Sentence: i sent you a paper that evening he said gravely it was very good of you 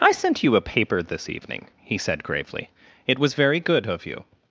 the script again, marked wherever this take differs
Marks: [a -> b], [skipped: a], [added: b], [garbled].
i sent you a paper [that -> this] evening he said gravely it was very good of you